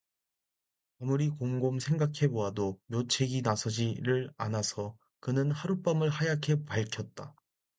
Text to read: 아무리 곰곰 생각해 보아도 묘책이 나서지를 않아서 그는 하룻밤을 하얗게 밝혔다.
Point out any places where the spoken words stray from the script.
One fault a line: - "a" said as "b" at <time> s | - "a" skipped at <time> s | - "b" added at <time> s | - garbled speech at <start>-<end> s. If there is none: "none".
none